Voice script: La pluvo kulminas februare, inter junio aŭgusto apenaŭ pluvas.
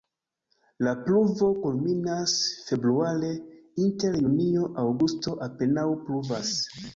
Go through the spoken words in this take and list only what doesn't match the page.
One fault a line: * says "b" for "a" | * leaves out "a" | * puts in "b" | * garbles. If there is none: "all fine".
all fine